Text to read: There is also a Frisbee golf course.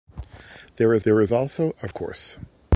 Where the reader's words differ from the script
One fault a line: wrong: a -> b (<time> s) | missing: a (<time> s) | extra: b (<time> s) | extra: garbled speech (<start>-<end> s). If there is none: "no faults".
extra: there is (1.0 s)
missing: Frisbee golf (1.9 s)